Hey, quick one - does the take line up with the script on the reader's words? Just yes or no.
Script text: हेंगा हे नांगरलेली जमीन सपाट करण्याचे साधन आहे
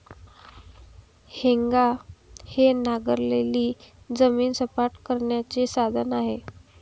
yes